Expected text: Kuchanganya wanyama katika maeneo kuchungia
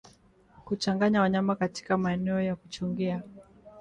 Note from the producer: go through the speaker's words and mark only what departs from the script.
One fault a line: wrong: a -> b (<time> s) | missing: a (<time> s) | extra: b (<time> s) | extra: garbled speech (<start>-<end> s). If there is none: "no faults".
extra: ya (2.4 s)